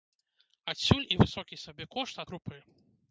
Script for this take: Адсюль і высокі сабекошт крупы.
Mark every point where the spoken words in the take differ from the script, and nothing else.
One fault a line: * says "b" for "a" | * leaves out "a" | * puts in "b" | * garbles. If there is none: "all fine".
all fine